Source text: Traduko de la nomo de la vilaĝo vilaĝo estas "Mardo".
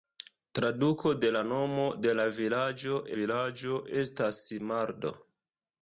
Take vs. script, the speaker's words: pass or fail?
pass